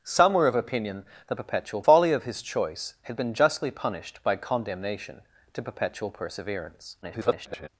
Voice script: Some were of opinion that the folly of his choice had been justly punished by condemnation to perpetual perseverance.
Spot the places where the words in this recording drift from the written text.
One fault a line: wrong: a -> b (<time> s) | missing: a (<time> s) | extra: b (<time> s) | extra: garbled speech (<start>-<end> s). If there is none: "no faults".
wrong: the -> perpetual (1.3 s)
extra: garbled speech (7.0-7.7 s)